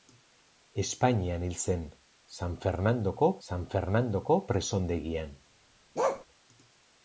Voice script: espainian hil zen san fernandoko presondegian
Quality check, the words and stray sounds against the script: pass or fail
fail